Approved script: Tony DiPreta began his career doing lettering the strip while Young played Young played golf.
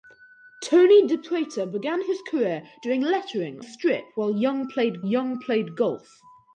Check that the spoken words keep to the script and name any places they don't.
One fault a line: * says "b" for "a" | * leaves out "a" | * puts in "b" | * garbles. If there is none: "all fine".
all fine